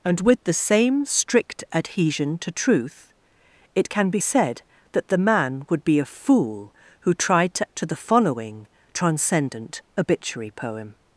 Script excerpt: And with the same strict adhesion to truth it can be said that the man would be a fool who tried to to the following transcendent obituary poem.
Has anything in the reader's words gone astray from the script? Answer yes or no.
no